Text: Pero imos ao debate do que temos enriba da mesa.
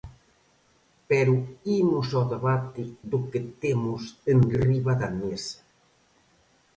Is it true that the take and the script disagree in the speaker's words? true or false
false